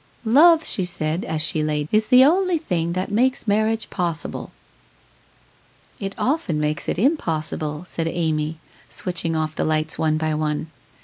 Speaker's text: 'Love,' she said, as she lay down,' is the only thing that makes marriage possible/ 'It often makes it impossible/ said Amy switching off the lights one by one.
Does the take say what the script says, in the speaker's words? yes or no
no